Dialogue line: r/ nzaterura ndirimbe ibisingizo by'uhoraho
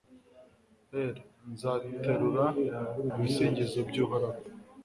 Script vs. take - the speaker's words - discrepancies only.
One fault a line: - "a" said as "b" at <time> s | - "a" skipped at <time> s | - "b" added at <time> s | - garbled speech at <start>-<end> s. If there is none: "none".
- "ndirimbe" skipped at 2.5 s